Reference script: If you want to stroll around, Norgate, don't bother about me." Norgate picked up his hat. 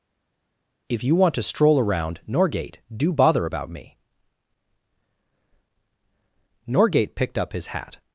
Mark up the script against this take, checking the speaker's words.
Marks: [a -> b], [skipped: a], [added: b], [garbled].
If you want to stroll around, Norgate, [don't -> do] bother about me." Norgate picked up his hat.